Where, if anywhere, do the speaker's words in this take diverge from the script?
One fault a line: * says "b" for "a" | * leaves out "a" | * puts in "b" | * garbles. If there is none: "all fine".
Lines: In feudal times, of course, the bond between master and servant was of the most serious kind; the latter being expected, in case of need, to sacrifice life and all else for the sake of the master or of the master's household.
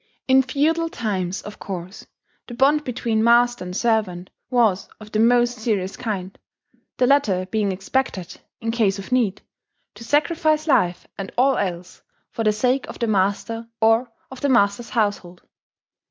all fine